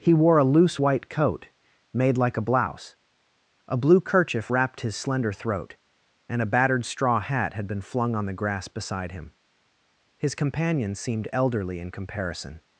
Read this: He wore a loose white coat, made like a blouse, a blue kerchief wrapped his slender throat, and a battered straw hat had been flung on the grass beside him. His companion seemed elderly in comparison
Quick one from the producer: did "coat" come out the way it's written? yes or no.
yes